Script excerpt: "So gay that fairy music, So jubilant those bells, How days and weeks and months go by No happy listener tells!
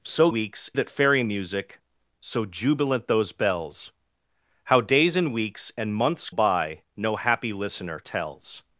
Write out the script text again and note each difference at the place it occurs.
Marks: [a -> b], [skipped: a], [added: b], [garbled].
"So [gay -> weeks] that fairy music, So jubilant those bells, How days and weeks and months [skipped: go] by No happy listener tells!